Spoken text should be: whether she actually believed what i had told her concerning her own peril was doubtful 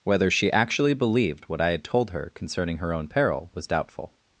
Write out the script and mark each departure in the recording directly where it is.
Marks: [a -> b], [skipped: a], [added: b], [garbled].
whether she actually believed what i had told her concerning her own peril was doubtful